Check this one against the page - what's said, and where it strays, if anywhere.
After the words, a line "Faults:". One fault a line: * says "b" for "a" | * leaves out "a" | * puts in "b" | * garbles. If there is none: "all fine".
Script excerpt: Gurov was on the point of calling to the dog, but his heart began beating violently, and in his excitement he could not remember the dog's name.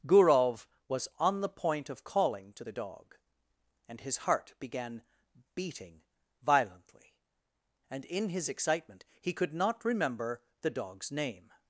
Gurov was on the point of calling to the dog, and his heart began beating violently, and in his excitement he could not remember the dog's name.
Faults:
* says "and" for "but"